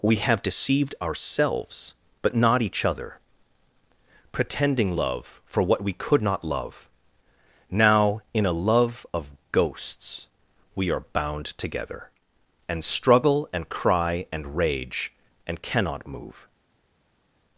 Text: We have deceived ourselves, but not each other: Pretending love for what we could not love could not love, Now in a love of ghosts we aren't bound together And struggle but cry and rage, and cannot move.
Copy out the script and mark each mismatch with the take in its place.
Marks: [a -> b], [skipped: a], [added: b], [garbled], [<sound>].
We have deceived ourselves, but not each other: Pretending love for what we could not love [skipped: could not love,] Now in a love of ghosts we [aren't -> are] bound together And struggle [but -> and] cry and rage, and cannot move.